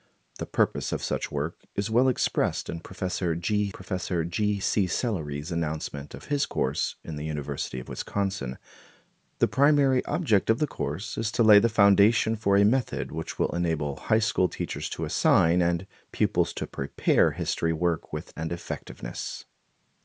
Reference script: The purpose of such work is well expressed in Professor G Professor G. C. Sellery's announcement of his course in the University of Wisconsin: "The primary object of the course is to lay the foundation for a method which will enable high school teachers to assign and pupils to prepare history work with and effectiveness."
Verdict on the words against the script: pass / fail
pass